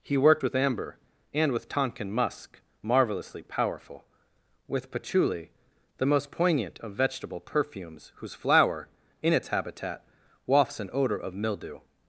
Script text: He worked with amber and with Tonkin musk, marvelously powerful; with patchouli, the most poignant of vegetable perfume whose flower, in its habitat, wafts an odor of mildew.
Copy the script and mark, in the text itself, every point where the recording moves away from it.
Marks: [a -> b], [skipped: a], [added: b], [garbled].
He worked with amber and with Tonkin musk, marvelously powerful; with patchouli, the most poignant of vegetable [perfume -> perfumes] whose flower, in its habitat, wafts an odor of mildew.